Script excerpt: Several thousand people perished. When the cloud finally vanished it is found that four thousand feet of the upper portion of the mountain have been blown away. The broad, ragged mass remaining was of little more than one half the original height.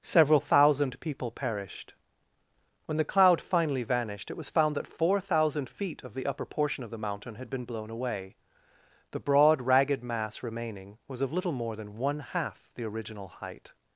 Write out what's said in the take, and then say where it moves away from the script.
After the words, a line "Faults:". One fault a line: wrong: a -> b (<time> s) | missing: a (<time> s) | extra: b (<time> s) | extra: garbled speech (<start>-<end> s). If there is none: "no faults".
Several thousand people perished. When the cloud finally vanished it was found that four thousand feet of the upper portion of the mountain had been blown away. The broad, ragged mass remaining was of little more than one half the original height.
Faults:
wrong: is -> was (4.4 s)
wrong: have -> had (7.3 s)